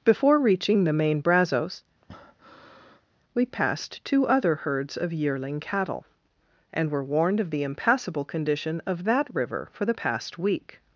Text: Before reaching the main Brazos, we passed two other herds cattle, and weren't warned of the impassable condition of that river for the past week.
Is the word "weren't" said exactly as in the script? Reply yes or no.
no